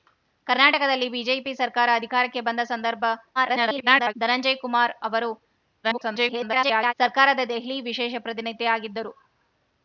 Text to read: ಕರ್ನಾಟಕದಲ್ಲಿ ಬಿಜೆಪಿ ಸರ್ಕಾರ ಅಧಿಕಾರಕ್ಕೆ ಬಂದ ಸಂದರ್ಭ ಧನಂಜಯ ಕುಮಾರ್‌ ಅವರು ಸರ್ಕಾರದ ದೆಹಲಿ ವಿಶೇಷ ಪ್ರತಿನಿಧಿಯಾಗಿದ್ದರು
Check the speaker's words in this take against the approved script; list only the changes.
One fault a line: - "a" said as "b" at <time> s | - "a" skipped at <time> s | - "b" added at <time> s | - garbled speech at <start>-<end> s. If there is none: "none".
- garbled speech at 3.4-4.1 s
- garbled speech at 5.8-6.9 s